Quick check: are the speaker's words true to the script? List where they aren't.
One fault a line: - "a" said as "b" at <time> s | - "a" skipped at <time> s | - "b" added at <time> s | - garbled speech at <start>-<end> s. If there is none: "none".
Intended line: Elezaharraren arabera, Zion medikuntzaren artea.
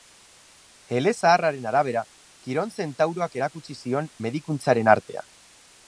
- "Kiron zentauroak erakutsi" added at 2.5 s